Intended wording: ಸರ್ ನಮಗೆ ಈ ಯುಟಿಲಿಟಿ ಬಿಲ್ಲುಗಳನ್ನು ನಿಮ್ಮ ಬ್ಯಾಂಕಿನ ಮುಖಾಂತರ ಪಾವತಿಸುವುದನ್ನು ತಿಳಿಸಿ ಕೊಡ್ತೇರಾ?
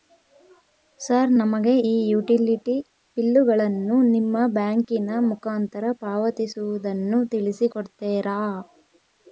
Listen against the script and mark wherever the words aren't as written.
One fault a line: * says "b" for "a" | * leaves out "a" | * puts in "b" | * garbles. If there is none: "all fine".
all fine